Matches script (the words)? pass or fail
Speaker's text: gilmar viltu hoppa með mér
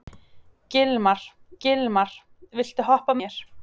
fail